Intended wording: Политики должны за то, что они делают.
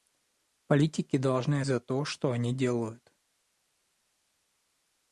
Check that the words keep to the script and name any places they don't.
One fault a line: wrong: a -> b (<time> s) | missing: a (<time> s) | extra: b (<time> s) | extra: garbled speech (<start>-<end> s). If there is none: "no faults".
no faults